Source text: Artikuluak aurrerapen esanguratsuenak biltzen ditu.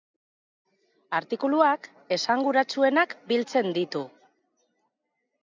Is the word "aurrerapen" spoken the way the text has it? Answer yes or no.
no